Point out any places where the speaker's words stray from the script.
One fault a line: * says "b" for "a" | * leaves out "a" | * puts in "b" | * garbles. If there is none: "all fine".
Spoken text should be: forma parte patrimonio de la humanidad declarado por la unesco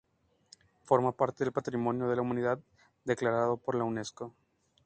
* puts in "del"